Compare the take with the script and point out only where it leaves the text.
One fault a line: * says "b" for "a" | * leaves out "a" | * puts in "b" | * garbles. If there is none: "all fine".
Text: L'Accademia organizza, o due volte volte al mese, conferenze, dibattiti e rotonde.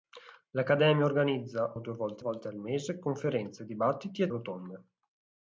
all fine